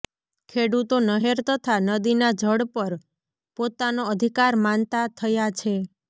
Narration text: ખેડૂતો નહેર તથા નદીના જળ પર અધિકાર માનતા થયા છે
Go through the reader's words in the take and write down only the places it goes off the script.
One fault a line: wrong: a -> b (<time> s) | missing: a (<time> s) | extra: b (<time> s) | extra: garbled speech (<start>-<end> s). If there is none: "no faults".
extra: પોતાનો (3.6 s)